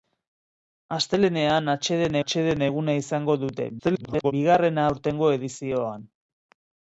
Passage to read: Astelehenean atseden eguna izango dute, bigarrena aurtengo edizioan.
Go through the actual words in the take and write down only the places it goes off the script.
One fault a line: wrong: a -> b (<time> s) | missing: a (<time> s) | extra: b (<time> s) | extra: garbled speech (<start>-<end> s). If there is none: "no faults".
extra: atseden (2.2 s)
extra: garbled speech (3.8-4.3 s)